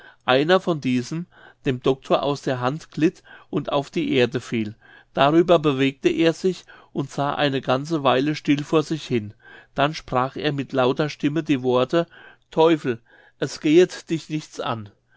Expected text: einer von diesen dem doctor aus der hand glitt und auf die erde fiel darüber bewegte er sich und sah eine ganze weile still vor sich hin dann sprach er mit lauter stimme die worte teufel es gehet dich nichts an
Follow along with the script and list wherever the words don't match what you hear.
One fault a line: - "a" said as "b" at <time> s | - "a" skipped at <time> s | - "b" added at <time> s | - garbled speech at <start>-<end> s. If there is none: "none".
none